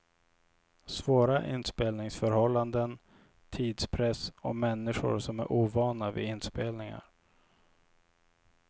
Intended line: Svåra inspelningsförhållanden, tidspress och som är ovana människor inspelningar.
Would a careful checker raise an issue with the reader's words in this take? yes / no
yes